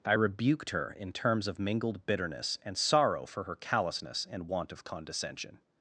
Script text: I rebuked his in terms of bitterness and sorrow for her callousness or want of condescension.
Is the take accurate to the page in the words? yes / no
no